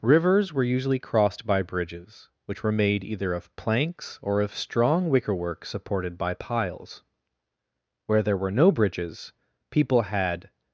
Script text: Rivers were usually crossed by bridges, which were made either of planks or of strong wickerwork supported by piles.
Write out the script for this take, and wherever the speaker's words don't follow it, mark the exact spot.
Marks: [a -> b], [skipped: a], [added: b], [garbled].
Rivers were usually crossed by bridges, which were made either of planks or of strong wickerwork supported by piles. [added: Where there were no bridges people had]